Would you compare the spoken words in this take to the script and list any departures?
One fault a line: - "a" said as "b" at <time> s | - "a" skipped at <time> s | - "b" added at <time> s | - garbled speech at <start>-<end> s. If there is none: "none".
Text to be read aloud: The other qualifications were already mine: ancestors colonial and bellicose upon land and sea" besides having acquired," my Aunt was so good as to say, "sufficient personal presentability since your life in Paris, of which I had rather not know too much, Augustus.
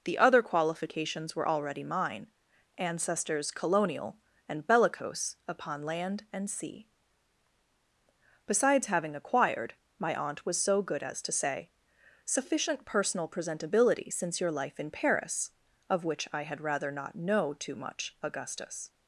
none